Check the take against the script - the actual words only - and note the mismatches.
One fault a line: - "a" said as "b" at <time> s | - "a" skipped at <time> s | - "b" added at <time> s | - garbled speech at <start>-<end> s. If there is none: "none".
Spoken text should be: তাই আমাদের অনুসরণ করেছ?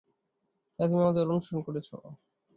- "তুমি" added at 0.9 s